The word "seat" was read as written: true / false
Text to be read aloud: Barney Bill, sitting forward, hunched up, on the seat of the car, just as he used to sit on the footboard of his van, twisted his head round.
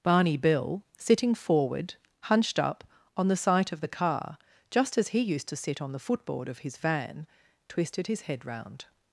false